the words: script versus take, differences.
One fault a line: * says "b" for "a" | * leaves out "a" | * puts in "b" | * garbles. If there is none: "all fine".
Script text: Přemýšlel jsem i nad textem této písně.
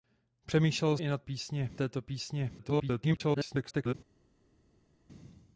* leaves out "jsem"
* says "písně" for "textem"
* garbles